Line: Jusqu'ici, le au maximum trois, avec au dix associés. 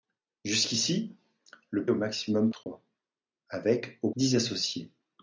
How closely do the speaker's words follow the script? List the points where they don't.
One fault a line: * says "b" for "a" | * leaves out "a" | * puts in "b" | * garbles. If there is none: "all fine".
all fine